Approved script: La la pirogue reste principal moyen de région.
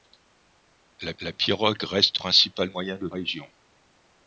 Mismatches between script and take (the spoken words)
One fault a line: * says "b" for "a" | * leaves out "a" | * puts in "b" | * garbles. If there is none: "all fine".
all fine